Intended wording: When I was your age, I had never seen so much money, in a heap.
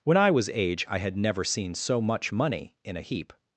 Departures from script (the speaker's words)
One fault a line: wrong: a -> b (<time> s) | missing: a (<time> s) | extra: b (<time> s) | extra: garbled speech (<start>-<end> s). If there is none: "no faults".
missing: your (0.5 s)